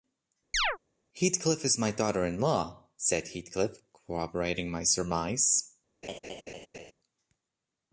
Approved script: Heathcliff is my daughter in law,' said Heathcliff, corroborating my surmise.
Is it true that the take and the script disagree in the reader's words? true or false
false